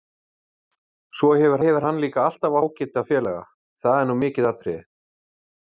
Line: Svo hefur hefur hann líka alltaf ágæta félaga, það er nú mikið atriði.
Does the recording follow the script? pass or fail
pass